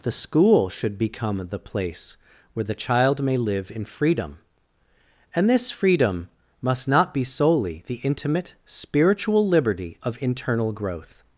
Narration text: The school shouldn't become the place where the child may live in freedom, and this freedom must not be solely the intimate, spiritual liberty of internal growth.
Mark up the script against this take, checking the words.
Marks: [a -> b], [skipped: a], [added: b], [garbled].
The school [shouldn't -> should] become the place where the child may live in freedom, and this freedom must not be solely the intimate, spiritual liberty of internal growth.